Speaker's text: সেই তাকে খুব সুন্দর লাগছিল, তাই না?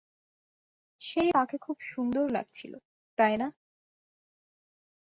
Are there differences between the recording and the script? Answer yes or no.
no